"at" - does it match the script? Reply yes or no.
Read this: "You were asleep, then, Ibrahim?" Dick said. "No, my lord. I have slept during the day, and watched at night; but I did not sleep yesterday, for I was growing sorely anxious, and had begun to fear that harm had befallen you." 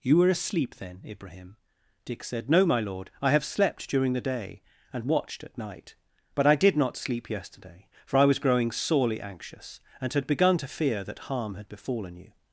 yes